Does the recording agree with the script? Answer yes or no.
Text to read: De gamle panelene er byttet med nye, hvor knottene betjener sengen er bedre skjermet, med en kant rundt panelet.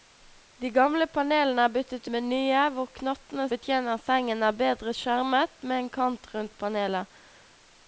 yes